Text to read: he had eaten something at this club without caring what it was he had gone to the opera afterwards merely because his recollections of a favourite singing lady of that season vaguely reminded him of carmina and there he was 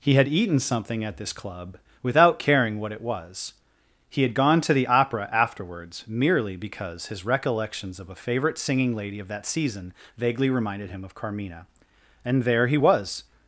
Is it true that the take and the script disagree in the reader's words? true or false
false